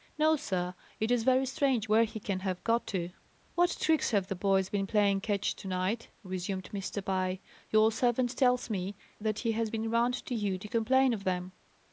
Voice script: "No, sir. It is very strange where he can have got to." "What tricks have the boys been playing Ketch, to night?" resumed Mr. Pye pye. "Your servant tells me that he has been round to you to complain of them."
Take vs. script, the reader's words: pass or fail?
fail